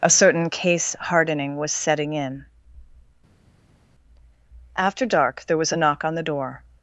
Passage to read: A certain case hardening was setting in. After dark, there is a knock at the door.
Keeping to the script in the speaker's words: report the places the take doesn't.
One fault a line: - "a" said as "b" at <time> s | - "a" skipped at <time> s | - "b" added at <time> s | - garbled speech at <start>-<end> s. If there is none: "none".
- "is" said as "was" at 5.6 s
- "at" said as "on" at 6.0 s